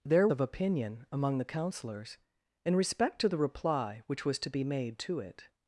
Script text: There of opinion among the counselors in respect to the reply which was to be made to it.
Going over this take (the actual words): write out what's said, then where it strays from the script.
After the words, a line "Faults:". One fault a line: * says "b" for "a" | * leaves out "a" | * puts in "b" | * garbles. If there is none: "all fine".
There of opinion among the counselors in respect to the reply which was to be made to it.
Faults:
all fine